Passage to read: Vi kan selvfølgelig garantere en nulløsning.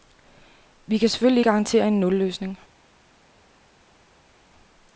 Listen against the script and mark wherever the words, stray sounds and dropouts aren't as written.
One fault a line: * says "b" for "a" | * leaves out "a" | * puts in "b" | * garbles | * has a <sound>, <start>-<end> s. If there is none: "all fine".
all fine